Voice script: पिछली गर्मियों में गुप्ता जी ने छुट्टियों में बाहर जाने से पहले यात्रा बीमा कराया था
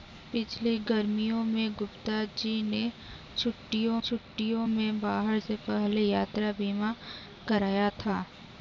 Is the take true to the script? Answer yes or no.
no